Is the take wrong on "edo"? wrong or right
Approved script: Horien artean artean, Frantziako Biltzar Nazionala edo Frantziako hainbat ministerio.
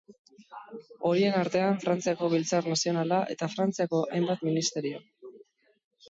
wrong